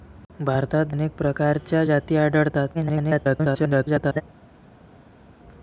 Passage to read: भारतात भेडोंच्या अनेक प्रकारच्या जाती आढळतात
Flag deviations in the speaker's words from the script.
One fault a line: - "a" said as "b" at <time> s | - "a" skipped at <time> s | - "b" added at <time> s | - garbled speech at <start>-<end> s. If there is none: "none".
- "भेडोंच्या" skipped at 0.9 s
- garbled speech at 2.7-4.2 s